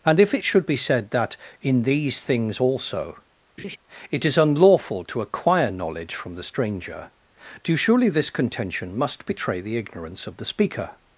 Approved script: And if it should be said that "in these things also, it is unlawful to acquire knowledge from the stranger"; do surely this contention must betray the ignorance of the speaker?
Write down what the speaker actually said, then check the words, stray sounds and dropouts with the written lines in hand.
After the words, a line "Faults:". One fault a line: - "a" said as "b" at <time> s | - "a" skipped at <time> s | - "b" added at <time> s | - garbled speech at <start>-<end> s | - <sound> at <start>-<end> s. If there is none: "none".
And if it should be said that "in these things also, it is unlawful to acquire knowledge from the stranger"; do surely this contention must betray the ignorance of the speaker?
Faults:
- laugh at 3.6-3.8 s